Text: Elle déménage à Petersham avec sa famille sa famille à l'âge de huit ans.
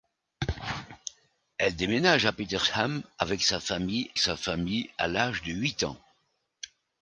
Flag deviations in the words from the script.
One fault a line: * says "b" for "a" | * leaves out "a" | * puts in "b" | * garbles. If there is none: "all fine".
all fine